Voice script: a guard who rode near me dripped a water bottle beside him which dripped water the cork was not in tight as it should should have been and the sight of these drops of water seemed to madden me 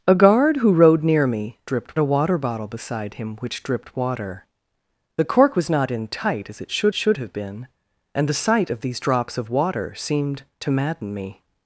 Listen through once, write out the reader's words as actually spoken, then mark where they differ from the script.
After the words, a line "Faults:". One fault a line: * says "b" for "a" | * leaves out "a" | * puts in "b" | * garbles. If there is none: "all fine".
a guard who rode near me dripped a water bottle beside him which dripped water the cork was not in tight as it should should have been and the sight of these drops of water seemed to madden me
Faults:
all fine